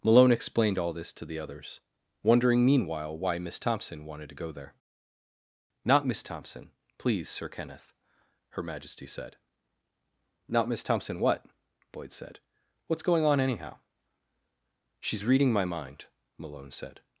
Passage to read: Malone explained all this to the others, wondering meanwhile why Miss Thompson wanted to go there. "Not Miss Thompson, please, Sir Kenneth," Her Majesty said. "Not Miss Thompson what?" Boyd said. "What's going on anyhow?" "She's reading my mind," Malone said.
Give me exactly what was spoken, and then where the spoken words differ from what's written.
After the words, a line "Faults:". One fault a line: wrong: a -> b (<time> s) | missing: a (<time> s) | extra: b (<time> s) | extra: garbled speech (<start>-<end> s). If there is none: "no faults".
Malone explained all this to the others, wondering meanwhile why Miss Thompson wanted to go there. "Not Miss Thompson, please, Sir Kenneth," Her Majesty said. "Not Miss Thompson what?" Boyd said. "What's going on anyhow?" "She's reading my mind," Malone said.
Faults:
no faults